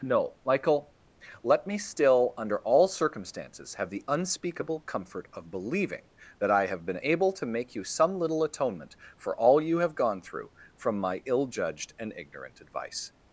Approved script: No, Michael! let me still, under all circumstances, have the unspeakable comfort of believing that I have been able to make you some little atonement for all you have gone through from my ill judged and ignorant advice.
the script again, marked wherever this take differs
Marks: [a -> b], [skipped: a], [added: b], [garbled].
No, Michael! let me still, under all circumstances, have the unspeakable comfort of believing that I have been able to make you some little atonement for all you have gone through from my ill judged and ignorant advice.